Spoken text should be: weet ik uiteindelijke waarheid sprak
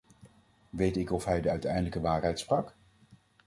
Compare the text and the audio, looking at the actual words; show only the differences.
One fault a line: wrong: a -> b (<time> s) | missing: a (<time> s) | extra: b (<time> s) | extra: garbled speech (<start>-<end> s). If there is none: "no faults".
extra: of hij de (1.1 s)